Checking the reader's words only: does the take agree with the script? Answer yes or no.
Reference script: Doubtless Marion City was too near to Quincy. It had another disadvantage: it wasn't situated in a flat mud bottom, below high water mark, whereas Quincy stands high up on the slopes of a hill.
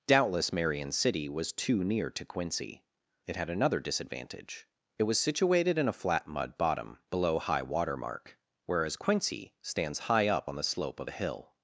no